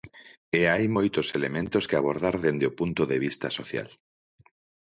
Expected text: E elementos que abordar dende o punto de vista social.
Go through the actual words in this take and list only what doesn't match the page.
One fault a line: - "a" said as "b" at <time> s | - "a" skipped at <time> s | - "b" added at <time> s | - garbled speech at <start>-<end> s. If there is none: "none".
- "hai moitos" added at 0.7 s